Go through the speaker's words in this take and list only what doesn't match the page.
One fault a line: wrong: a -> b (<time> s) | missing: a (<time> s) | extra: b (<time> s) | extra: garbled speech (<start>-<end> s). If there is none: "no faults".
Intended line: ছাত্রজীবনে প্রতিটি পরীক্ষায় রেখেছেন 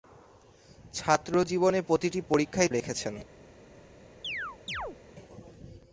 no faults